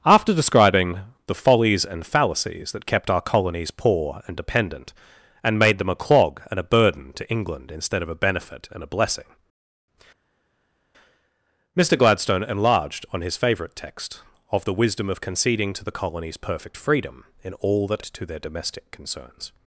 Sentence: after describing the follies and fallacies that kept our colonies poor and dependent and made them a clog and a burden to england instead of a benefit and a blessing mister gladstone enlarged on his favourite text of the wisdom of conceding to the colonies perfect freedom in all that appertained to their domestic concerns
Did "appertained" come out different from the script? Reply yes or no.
yes